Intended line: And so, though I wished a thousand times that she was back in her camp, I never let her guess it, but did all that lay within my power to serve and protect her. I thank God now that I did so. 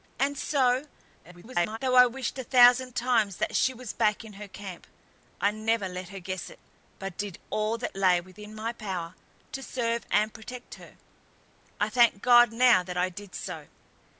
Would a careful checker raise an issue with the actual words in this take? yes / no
yes